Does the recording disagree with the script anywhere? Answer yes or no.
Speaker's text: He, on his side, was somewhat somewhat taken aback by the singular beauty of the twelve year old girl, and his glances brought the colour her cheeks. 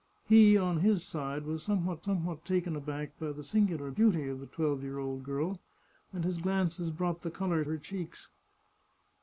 no